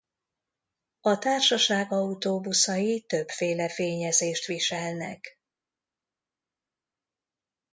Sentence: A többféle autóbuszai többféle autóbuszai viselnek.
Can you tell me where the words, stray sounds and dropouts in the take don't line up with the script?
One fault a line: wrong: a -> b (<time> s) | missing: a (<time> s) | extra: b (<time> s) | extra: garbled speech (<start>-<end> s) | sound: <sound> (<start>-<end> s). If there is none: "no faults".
wrong: többféle -> társaság (1.2 s)
wrong: autóbuszai -> fényezést (3.7 s)